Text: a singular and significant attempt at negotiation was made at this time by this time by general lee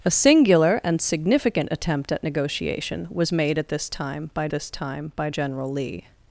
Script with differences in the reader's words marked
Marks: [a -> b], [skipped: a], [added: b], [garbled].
a singular and significant attempt at negotiation was made at this time by this time by general lee